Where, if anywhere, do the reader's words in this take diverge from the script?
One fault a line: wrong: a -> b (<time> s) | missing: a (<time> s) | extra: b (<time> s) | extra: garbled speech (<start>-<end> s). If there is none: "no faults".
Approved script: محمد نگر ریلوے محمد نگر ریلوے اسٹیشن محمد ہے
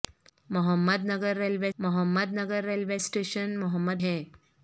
no faults